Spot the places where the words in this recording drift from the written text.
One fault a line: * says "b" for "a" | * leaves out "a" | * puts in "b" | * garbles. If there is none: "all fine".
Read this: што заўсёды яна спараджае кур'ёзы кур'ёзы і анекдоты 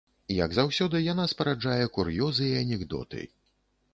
* says "як" for "што"
* leaves out "кур'ёзы"